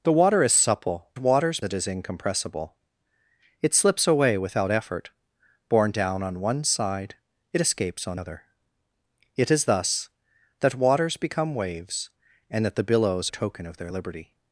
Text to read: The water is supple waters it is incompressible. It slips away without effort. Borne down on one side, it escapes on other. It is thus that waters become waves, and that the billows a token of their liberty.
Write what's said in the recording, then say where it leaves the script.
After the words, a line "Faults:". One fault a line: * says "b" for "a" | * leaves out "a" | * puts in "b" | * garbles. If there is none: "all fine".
The water is supple waters it is incompressible. It slips away without effort. Borne down on one side, it escapes on other. It is thus that waters become waves, and that the billows a token of their liberty.
Faults:
all fine